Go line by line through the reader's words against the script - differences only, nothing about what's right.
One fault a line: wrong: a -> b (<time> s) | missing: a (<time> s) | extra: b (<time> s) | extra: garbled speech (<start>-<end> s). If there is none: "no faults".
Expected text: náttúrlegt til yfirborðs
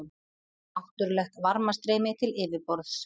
extra: varmastreymi (1.5 s)